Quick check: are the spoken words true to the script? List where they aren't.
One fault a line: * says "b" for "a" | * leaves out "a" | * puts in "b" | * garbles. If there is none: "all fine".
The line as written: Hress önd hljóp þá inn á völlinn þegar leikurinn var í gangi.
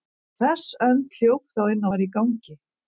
* leaves out "völlinn þegar leikurinn"